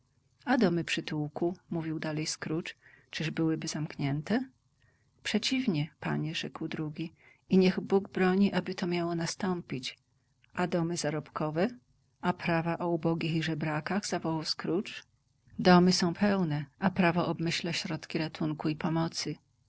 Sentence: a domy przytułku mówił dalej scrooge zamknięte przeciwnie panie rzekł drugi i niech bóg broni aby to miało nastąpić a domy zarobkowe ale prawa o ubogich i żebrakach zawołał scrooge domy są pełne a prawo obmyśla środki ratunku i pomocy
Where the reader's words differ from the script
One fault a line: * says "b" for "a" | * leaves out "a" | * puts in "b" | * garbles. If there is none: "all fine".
* puts in "czyż byłyby"
* says "a" for "ale"